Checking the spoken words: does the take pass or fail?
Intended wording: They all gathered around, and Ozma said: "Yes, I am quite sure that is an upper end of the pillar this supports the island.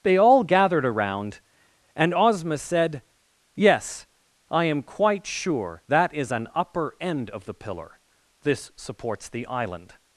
pass